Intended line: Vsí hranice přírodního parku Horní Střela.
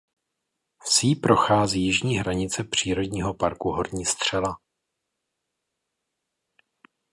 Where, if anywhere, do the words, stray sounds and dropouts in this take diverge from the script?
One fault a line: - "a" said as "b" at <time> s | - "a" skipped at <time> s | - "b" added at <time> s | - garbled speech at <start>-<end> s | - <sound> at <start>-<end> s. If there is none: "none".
- "prochází jižní" added at 1.1 s